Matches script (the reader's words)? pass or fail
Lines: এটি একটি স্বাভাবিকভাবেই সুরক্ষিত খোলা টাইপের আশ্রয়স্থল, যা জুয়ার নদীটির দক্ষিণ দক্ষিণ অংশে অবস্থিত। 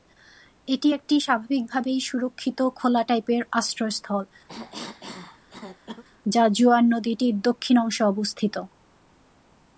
fail